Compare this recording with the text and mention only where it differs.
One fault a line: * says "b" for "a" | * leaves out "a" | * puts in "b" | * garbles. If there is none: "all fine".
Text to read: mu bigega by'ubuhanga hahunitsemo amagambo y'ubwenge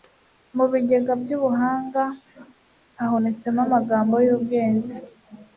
all fine